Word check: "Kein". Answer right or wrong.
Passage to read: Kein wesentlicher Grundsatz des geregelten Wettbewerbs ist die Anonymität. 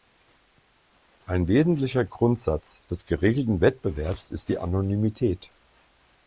wrong